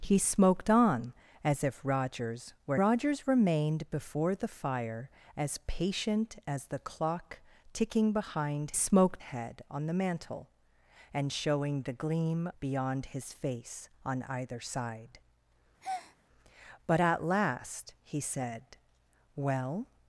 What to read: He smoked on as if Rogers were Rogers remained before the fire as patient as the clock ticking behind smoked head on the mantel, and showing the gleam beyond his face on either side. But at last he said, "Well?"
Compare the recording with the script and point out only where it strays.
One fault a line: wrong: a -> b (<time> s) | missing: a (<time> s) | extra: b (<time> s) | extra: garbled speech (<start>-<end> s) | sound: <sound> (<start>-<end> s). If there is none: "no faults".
sound: breath (15.8-16.2 s)